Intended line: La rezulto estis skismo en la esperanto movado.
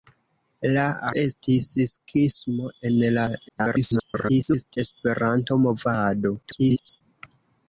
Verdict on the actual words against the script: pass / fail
fail